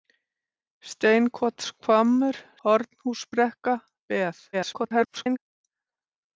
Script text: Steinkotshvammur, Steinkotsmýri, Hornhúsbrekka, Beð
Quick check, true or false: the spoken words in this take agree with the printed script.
false